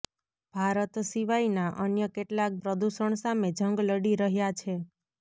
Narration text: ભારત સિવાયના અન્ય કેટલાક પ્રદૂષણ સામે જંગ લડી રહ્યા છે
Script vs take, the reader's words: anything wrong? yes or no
no